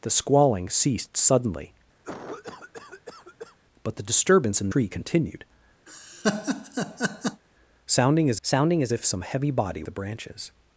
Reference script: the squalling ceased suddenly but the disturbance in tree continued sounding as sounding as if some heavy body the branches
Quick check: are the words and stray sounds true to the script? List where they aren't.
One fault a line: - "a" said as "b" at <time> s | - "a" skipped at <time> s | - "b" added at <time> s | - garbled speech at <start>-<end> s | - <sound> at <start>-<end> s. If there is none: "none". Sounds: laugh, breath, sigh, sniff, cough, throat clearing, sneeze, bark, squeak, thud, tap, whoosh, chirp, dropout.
- cough at 2.0-3.6 s
- laugh at 5.9-7.4 s